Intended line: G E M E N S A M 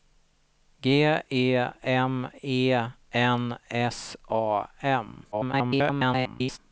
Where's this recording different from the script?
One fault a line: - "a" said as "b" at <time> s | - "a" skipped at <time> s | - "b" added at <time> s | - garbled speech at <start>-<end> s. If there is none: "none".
- garbled speech at 5.3-6.6 s